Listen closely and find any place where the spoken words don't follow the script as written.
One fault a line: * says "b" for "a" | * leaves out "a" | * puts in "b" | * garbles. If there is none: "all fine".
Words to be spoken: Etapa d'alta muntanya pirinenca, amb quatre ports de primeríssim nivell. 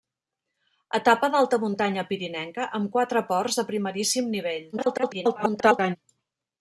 * garbles